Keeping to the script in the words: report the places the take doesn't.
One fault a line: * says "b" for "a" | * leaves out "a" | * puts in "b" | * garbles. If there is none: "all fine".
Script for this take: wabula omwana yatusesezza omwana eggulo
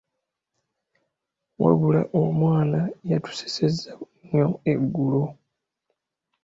* says "nnyo" for "omwana"